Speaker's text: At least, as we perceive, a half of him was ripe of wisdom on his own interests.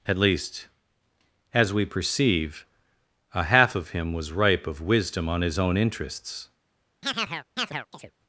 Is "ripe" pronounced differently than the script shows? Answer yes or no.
no